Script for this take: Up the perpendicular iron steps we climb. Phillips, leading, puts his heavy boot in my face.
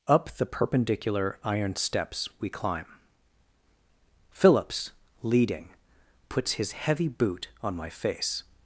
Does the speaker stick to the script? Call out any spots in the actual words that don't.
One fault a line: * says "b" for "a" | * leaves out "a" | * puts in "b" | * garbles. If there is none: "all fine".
* says "on" for "in"